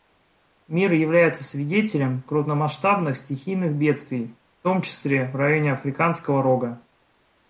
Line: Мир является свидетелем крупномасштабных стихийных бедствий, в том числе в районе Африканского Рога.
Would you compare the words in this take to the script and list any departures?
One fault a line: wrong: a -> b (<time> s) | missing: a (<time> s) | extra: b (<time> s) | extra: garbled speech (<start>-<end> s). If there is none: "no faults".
no faults